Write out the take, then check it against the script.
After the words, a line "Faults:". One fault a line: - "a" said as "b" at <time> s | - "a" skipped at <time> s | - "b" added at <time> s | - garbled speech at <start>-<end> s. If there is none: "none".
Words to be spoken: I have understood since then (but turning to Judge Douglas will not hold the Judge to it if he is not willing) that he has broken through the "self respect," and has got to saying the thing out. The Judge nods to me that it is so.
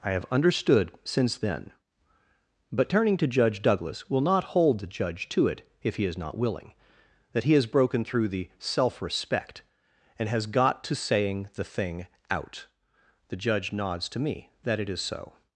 I have understood since then (but turning to Judge Douglas will not hold the Judge to it if he is not willing) that he has broken through the "self respect," and has got to saying the thing out. The Judge nods to me that it is so.
Faults:
none